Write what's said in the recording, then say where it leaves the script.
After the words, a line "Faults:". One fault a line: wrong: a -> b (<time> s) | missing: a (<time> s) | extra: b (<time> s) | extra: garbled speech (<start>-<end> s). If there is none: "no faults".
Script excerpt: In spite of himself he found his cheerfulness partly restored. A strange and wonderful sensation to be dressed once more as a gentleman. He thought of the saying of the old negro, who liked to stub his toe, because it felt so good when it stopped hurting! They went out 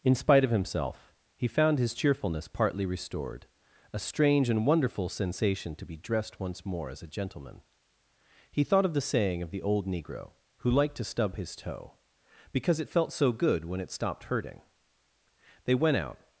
In spite of himself he found his cheerfulness partly restored. A strange and wonderful sensation to be dressed once more as a gentleman. He thought of the saying of the old negro, who liked to stub his toe, because it felt so good when it stopped hurting! They went out
Faults:
no faults